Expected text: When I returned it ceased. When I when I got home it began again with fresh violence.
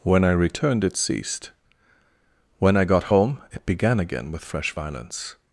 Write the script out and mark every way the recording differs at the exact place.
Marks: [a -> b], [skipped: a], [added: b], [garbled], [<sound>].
When I returned it ceased. When I [skipped: when I] got home it began again with fresh violence.